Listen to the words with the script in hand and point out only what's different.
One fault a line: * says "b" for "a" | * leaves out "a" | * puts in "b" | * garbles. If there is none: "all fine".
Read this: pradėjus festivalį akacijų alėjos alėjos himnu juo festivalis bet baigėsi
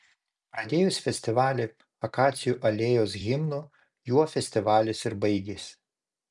* leaves out "alėjos"
* says "ir" for "bet"